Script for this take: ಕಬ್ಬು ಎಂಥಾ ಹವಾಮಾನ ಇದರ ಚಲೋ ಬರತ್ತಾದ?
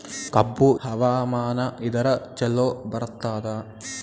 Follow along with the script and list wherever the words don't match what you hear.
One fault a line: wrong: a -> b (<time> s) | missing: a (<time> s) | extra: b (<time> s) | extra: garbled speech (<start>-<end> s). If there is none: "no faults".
missing: ಎಂಥಾ (0.8 s)